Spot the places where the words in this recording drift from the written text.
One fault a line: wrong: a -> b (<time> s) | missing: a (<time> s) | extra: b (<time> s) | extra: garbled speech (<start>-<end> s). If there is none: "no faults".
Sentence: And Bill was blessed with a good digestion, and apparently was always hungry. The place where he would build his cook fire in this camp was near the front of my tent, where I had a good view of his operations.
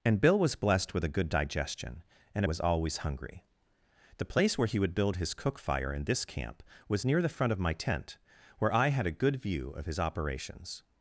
missing: apparently (2.4 s)